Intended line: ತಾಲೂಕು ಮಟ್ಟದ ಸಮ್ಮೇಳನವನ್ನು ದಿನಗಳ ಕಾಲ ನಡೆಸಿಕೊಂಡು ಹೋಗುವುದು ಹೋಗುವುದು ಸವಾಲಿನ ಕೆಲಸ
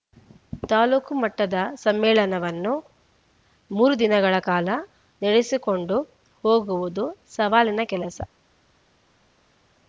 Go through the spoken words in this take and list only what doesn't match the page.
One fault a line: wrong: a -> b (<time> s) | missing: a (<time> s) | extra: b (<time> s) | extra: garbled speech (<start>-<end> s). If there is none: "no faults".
extra: ಮೂರು (3.7 s)
missing: ಹೋಗುವುದು (7.1 s)